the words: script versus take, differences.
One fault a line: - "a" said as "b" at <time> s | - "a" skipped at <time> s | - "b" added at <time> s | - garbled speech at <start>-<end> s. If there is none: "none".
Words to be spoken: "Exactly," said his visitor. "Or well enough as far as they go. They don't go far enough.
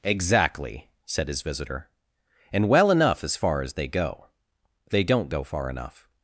- "Or" said as "And" at 2.5 s